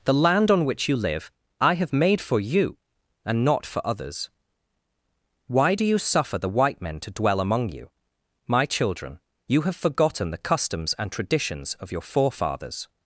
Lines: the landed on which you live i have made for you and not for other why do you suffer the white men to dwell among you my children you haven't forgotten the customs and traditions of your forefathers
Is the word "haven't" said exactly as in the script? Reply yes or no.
no